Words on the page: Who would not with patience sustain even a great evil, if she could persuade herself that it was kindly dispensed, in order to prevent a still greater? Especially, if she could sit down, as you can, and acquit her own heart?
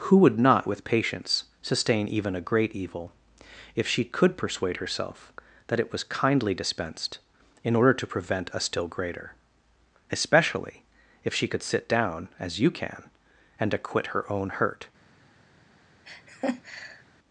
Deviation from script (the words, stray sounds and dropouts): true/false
true